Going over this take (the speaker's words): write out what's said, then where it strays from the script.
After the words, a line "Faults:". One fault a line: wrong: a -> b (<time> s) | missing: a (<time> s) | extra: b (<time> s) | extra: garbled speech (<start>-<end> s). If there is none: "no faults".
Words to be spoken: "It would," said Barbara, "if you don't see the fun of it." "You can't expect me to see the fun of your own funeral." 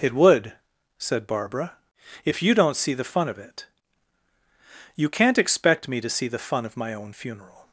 "It would," said Barbara, "if you don't see the fun of it." "You can't expect me to see the fun of my own funeral."
Faults:
wrong: your -> my (6.8 s)